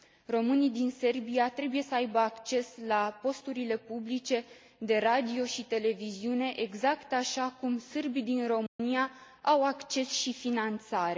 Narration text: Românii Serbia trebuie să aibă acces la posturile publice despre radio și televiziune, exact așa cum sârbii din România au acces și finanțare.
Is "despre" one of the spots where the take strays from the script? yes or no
yes